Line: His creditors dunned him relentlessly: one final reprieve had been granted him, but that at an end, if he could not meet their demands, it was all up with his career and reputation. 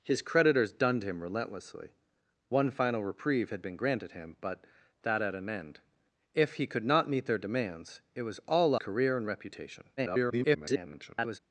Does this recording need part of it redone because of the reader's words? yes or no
yes